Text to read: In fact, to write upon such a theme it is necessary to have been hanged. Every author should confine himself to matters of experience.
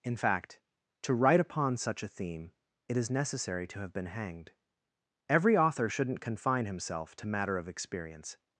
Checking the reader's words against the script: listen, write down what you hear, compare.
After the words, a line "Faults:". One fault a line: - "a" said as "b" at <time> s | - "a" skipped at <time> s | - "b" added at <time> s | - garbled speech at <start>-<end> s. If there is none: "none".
In fact, to write upon such a theme it is necessary to have been hanged. Every author shouldn't confine himself to matter of experience.
Faults:
- "should" said as "shouldn't" at 5.9 s
- "matters" said as "matter" at 7.3 s